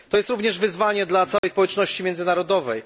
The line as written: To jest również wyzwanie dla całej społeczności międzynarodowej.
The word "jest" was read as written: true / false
true